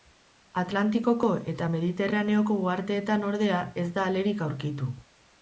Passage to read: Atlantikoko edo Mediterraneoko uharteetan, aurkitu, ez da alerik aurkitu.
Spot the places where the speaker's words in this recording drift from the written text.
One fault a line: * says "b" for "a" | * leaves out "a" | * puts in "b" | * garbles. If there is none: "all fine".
* says "eta" for "edo"
* says "ordea" for "aurkitu"